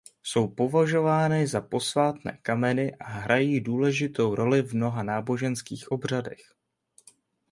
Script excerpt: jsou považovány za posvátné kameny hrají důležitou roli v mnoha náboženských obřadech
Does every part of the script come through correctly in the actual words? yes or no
no